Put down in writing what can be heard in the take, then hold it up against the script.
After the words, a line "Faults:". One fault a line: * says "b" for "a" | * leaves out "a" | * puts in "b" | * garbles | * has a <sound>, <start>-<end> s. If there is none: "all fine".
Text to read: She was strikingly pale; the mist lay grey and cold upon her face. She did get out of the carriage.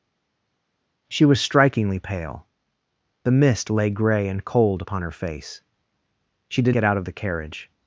She was strikingly pale; the mist lay grey and cold upon her face. She did get out of the carriage.
Faults:
all fine